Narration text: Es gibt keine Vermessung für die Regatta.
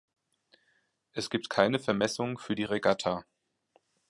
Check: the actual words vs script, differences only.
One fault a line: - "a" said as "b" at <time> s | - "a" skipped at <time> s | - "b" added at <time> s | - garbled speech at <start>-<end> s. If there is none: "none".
none